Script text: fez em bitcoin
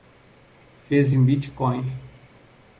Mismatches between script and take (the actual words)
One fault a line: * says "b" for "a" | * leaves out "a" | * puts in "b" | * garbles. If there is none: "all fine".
all fine